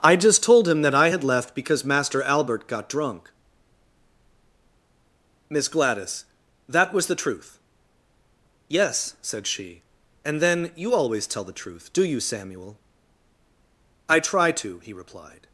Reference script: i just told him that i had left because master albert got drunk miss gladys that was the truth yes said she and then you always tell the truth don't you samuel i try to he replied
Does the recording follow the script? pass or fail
fail